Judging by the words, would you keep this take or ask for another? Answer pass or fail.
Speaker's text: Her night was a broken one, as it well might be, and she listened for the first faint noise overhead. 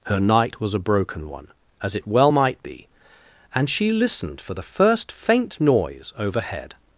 pass